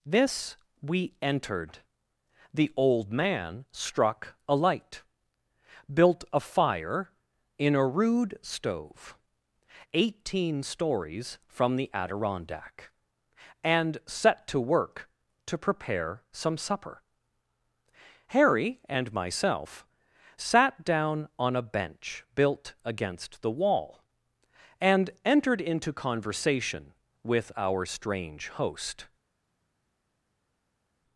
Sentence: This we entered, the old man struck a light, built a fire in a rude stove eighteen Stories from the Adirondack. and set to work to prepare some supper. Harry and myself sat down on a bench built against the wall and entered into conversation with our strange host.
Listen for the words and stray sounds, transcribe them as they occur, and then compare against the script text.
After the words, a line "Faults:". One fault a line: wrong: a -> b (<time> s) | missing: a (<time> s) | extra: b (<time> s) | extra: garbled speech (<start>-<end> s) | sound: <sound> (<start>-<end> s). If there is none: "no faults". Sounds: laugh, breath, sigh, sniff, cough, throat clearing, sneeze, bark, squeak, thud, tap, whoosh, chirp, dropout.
This we entered, the old man struck a light, built a fire in a rude stove eighteen Stories from the Adirondack. and set to work to prepare some supper. Harry and myself sat down on a bench built against the wall and entered into conversation with our strange host.
Faults:
no faults